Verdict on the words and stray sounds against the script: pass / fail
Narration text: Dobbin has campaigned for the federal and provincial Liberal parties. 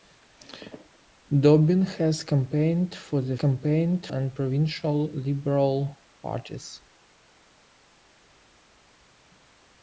fail